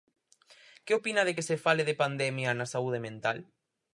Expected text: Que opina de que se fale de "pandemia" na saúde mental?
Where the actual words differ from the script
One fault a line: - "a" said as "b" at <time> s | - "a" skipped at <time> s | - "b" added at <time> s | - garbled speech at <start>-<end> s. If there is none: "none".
none